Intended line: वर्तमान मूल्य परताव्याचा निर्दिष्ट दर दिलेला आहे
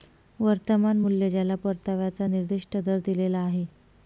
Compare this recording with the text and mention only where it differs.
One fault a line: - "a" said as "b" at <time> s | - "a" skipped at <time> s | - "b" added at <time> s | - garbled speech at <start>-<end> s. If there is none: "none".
- "ज्याला" added at 1.3 s